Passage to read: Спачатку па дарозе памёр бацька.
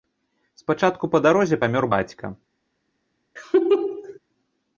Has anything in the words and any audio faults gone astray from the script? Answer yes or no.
yes